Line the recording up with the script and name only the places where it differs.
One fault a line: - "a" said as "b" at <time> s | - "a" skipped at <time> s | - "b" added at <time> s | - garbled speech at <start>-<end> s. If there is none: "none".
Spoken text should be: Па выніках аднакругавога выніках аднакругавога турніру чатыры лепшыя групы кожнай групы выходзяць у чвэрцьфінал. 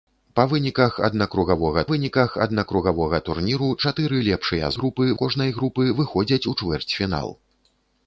none